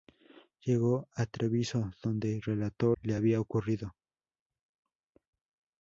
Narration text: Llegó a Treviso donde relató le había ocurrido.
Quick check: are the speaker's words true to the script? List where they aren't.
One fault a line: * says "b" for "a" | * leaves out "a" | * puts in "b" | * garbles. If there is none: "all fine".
all fine